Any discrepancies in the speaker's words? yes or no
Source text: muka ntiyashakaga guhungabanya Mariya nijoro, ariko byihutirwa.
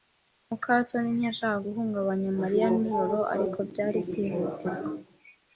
yes